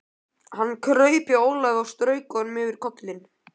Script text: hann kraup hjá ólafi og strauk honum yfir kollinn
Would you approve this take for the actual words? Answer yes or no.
yes